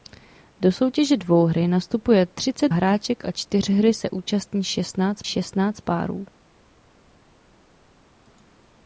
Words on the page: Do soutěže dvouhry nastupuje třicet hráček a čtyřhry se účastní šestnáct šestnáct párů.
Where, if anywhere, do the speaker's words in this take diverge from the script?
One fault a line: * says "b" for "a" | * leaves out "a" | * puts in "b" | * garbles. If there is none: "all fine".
all fine